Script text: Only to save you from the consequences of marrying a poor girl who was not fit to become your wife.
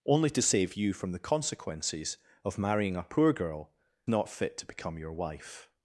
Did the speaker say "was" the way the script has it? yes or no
no